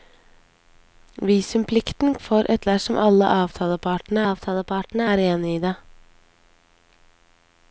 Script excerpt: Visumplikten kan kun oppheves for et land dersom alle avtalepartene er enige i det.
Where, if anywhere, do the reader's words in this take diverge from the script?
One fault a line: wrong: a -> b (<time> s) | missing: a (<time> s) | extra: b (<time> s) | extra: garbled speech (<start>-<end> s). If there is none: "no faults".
missing: kan kun oppheves (2.1 s)
missing: land (2.6 s)
extra: avtalepartene (4.3 s)